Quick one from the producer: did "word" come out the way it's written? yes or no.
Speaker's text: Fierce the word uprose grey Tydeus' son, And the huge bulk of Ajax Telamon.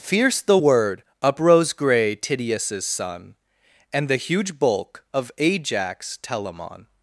yes